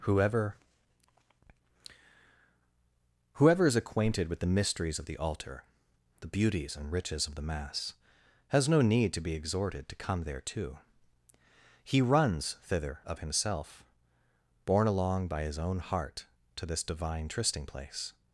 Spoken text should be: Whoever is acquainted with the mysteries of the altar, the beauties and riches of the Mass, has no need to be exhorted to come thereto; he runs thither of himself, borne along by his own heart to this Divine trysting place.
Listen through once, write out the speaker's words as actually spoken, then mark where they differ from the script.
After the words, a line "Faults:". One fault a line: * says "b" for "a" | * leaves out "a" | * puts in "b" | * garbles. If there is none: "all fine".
Whoever whoever is acquainted with the mysteries of the altar, the beauties and riches of the Mass, has no need to be exhorted to come thereto; he runs thither of himself, borne along by his own heart to this Divine trysting place.
Faults:
* puts in "whoever"